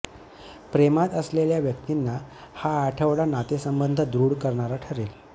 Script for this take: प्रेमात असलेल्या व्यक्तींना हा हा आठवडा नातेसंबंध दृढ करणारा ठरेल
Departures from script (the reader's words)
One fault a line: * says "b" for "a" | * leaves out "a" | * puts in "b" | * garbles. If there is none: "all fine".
* leaves out "हा"